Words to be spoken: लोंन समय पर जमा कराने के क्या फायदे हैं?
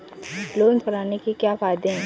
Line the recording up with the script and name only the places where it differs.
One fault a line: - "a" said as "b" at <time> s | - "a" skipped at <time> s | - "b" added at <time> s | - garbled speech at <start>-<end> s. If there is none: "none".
- "समय पर जमा" skipped at 0.8 s